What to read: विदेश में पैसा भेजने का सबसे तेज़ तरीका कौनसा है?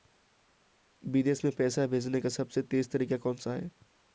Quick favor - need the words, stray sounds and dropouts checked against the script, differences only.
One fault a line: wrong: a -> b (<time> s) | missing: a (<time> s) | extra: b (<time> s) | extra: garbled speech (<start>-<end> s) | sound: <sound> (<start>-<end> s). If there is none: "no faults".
no faults